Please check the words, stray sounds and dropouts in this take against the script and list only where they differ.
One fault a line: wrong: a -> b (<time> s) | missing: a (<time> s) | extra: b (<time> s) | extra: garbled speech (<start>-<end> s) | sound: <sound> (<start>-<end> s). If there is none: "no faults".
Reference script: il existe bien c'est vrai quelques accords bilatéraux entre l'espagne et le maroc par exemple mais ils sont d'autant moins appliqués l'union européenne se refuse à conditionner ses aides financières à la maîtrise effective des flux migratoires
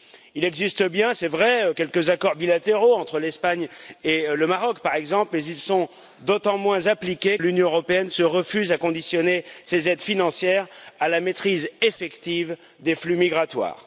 no faults